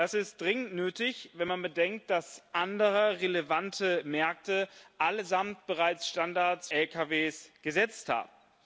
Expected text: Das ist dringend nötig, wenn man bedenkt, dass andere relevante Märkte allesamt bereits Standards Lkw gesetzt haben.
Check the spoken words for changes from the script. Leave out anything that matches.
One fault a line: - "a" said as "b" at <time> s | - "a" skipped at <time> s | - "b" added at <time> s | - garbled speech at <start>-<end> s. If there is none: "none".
none